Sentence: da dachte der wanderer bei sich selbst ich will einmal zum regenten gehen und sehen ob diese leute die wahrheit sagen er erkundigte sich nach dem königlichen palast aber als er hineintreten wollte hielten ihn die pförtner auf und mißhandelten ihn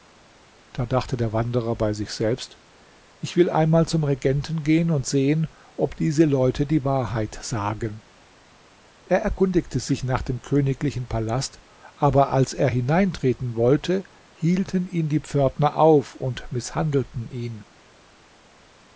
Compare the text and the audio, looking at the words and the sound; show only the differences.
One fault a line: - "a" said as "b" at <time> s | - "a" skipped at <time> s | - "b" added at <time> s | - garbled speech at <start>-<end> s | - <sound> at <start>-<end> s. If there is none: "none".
none